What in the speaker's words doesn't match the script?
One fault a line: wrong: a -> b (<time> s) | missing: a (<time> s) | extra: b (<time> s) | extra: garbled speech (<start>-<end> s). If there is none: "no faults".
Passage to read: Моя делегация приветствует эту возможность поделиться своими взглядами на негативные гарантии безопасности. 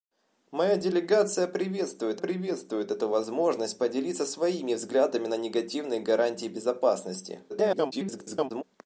extra: приветствует (2.2 s)
extra: garbled speech (7.5-8.6 s)